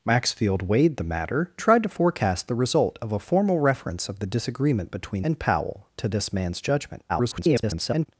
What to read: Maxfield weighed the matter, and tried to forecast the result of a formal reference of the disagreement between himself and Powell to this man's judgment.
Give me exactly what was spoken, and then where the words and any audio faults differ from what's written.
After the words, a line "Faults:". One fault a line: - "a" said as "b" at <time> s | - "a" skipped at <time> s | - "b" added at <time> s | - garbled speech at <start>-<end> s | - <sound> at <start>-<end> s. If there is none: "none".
Maxfield weighed the matter, tried to forecast the result of a formal reference of the disagreement between and Powell to this man's judgment. [garbled]
Faults:
- "and" skipped at 1.5 s
- "himself" skipped at 5.2 s
- garbled speech at 7.1-8.1 s